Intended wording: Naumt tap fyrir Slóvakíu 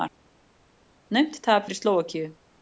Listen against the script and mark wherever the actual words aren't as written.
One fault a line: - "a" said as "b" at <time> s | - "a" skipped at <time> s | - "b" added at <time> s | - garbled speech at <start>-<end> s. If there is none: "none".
none